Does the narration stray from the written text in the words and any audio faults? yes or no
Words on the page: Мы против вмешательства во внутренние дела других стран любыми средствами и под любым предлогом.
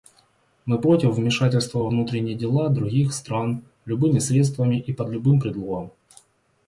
no